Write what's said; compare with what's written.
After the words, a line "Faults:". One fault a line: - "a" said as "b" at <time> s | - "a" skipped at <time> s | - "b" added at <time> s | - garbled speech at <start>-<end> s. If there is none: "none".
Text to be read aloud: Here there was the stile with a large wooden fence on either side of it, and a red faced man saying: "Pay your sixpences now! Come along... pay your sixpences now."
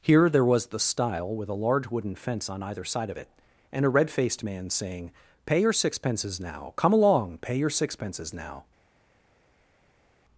Here there was the stile with a large wooden fence on either side of it, and a red faced man saying: "Pay your sixpences now! Come along... pay your sixpences now."
Faults:
none